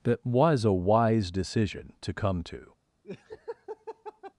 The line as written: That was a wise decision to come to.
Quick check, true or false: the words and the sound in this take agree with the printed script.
false